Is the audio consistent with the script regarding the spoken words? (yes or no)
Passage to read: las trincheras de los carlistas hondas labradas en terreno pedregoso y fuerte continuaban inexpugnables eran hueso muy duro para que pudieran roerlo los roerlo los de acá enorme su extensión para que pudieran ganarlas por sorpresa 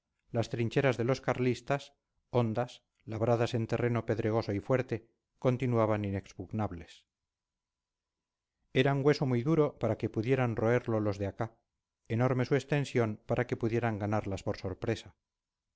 no